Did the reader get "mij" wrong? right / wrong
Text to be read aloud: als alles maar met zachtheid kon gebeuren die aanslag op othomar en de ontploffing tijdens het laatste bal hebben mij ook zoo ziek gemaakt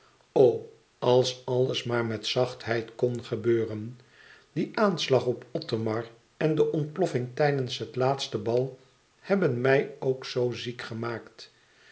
right